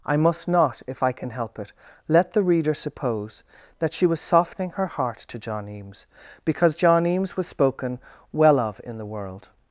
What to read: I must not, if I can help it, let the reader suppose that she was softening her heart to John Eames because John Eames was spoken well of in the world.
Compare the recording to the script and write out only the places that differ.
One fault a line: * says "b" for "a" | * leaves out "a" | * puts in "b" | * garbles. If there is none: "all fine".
all fine